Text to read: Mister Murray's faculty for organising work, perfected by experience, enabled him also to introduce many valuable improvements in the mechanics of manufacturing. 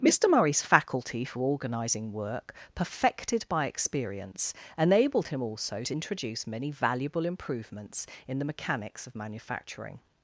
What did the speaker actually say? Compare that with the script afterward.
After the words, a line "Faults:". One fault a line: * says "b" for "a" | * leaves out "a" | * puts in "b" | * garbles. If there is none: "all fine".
Mister Murray's faculty for organising work, perfected by experience, enabled him also to introduce many valuable improvements in the mechanics of manufacturing.
Faults:
all fine